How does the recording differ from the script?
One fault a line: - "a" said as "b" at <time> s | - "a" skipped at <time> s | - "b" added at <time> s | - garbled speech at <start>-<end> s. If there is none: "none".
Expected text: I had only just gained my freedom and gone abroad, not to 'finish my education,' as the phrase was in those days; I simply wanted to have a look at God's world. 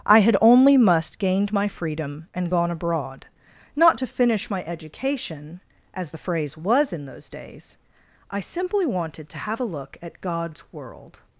- "just" said as "must" at 0.8 s